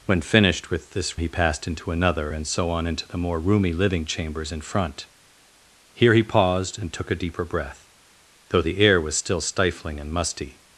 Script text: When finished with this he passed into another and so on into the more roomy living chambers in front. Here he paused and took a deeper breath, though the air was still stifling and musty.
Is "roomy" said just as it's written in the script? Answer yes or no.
yes